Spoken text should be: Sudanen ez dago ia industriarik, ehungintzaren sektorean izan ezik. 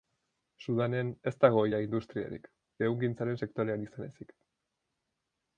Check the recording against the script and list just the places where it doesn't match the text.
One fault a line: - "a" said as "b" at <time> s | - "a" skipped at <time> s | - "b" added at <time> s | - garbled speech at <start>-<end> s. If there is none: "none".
none